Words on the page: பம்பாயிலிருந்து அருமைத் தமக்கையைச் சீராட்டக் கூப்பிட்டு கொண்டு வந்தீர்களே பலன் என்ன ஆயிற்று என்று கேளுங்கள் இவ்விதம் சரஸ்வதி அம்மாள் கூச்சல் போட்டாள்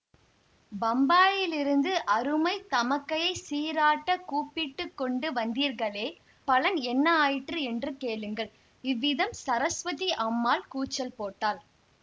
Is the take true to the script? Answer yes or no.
yes